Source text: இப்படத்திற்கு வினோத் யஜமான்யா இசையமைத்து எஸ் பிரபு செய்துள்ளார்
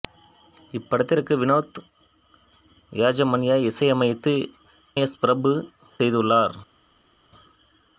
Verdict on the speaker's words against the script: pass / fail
pass